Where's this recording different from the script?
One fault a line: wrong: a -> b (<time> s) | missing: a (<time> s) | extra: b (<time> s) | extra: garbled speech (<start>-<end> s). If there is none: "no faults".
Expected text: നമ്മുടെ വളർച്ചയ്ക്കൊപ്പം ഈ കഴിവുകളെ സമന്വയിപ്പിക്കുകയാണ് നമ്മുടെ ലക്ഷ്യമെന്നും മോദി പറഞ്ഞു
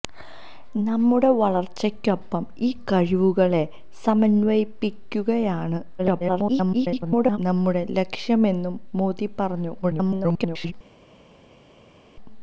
extra: garbled speech (6.0-7.4 s)
extra: garbled speech (9.8-10.7 s)